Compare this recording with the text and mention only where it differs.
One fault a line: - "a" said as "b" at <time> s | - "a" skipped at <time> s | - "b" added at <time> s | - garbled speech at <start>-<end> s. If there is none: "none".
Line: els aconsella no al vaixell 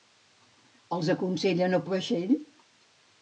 none